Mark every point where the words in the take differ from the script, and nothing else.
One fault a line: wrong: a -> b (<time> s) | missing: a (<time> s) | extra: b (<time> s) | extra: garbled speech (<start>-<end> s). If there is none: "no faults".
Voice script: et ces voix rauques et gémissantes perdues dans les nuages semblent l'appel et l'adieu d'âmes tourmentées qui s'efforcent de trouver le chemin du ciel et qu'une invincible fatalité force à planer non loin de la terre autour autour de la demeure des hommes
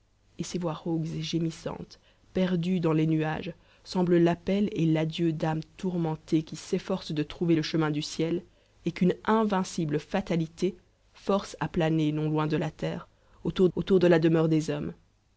no faults